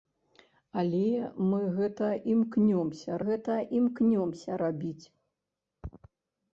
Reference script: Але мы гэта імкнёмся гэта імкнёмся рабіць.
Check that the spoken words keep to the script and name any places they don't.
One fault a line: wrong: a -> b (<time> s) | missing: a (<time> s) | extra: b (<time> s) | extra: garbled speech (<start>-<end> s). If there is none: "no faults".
no faults